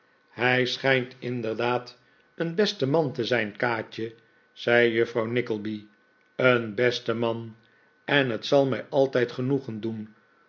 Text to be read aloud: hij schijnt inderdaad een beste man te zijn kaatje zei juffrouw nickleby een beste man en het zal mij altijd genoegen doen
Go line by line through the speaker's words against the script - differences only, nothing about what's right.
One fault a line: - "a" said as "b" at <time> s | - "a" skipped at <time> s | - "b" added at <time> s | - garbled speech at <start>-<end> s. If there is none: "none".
none